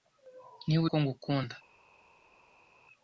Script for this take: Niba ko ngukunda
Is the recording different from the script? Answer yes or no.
no